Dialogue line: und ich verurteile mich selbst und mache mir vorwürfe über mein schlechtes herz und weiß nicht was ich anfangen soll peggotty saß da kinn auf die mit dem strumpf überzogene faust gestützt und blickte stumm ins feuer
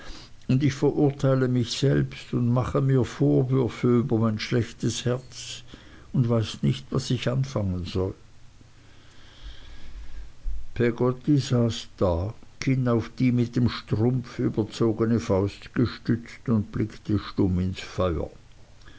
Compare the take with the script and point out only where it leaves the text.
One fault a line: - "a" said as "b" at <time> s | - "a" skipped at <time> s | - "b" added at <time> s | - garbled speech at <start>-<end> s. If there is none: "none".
none